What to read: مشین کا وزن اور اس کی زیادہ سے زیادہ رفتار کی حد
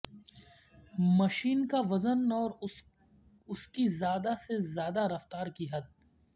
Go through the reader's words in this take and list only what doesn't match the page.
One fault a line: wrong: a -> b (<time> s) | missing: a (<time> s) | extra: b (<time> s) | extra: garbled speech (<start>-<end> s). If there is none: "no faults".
no faults